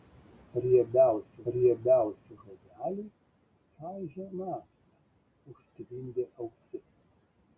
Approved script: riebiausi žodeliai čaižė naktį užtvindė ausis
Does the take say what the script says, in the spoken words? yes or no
no